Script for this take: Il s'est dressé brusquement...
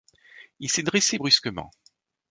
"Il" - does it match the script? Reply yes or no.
yes